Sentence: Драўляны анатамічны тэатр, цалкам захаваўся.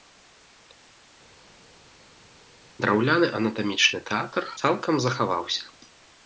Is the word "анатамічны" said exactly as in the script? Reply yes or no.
yes